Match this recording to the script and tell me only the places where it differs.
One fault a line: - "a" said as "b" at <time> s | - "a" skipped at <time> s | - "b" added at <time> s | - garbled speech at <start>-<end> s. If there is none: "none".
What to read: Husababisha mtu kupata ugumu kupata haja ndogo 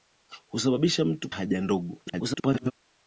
- "kupata ugumu kupata" skipped at 1.3 s
- garbled speech at 2.1-2.7 s